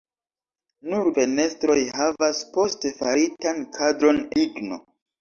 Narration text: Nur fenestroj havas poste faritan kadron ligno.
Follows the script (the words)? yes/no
yes